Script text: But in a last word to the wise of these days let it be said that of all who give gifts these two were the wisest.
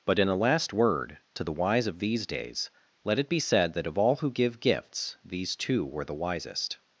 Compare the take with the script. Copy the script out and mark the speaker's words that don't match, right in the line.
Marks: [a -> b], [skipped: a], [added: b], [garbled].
But in a last word to the wise of these days let it be said that of all who give gifts these two were the wisest.